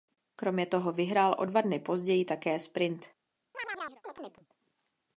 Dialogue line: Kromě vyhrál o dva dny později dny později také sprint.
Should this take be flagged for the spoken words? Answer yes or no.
yes